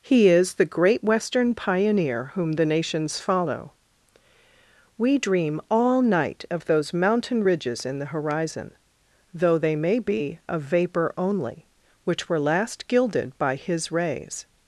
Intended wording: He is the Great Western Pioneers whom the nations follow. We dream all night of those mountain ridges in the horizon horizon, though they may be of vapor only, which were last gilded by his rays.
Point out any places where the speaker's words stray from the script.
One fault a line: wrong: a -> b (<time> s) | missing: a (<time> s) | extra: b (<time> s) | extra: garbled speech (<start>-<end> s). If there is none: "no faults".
wrong: Pioneers -> Pioneer (1.5 s)
missing: horizon (8.7 s)